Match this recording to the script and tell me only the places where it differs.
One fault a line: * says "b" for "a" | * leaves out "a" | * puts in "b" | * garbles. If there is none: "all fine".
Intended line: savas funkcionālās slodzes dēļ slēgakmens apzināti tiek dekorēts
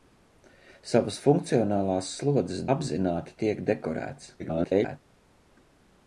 * leaves out "dēļ slēgakmens"
* garbles